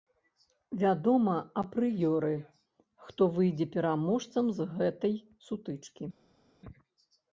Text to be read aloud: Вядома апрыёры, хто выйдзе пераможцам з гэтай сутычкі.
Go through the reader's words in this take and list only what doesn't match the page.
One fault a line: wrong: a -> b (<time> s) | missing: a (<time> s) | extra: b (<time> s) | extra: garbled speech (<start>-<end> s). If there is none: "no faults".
no faults